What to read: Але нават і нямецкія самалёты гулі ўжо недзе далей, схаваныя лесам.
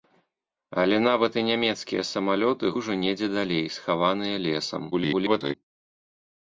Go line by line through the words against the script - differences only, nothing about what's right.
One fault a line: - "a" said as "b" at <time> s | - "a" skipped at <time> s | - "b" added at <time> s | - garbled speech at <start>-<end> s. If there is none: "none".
- "гулі" skipped at 2.7 s
- garbled speech at 4.9-5.5 s